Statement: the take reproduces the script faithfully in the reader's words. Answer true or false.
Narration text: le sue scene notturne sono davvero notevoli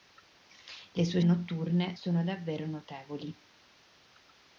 false